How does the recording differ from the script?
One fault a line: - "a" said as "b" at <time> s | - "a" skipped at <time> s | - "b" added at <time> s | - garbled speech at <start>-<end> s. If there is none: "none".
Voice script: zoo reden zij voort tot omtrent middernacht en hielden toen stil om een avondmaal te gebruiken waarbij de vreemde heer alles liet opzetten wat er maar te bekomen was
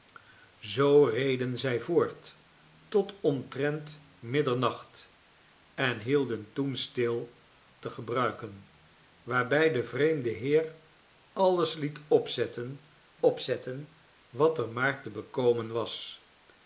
- "om een avondmaal" skipped at 7.3 s
- "opzetten" added at 13.2 s